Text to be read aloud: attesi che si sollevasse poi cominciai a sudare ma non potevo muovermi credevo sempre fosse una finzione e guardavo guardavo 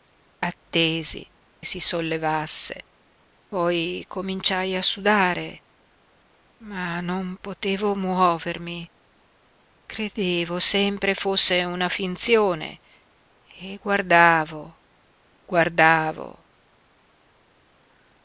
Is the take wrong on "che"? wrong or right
wrong